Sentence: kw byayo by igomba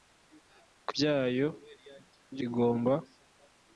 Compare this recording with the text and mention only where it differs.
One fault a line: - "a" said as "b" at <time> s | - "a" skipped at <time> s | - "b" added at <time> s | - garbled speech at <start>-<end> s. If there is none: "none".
none